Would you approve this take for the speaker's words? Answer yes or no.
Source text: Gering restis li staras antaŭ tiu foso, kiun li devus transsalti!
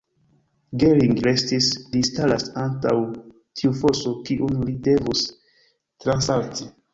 yes